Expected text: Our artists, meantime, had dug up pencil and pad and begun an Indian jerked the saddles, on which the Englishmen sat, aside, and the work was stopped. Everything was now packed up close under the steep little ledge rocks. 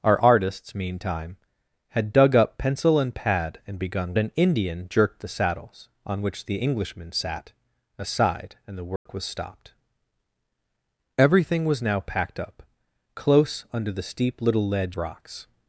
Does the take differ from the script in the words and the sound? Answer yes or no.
yes